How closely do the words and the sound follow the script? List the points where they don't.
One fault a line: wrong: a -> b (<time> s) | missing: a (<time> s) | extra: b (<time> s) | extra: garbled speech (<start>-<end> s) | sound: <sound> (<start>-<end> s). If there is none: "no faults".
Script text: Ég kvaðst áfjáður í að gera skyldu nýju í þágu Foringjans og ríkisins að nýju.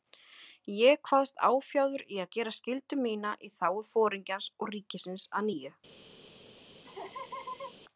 wrong: nýju -> mína (3.1 s)
sound: laugh (6.8-7.7 s)